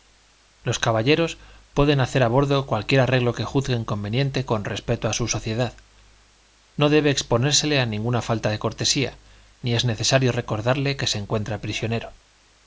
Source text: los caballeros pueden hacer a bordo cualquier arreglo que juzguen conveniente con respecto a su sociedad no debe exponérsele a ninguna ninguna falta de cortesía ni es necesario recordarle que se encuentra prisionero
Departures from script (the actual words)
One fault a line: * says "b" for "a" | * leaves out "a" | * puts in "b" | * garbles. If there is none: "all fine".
* leaves out "ninguna"